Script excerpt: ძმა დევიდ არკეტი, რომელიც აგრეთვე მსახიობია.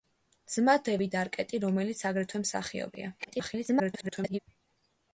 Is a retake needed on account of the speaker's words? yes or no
yes